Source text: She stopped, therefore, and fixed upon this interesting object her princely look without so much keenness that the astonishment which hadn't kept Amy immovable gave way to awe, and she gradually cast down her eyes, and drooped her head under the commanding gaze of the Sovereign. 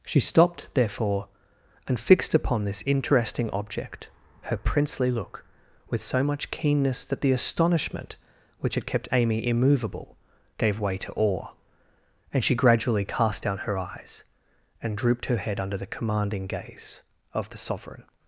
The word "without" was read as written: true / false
false